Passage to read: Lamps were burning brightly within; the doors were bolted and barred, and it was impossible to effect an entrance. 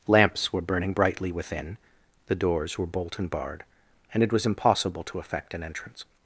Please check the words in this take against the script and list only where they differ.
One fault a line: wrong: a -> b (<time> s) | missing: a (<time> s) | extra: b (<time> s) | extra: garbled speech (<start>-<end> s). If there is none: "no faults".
wrong: bolted -> bolt (2.9 s)